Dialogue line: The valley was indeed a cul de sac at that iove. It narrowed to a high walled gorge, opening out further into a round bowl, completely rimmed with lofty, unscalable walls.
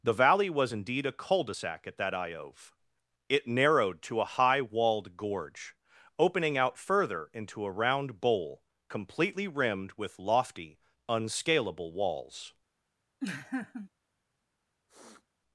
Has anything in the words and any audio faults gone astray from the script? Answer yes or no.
yes